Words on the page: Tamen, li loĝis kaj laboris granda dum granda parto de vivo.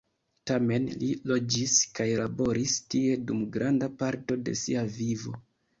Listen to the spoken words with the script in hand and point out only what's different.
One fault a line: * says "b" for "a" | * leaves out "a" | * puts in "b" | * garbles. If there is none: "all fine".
* says "tie" for "granda"
* puts in "sia"